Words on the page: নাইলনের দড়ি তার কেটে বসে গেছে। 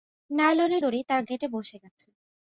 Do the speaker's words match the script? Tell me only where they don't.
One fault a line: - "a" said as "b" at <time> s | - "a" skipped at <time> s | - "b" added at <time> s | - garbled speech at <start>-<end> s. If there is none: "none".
none